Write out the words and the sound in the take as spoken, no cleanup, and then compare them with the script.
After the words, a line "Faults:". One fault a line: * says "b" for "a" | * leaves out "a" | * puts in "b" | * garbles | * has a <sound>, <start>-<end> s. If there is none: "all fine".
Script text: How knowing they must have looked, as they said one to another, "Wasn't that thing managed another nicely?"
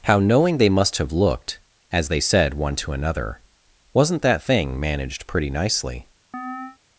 How knowing they must have looked, as they said one to another, "Wasn't that thing managed pretty nicely?"
Faults:
* says "pretty" for "another"
* has a chirp, 6.3-6.8 s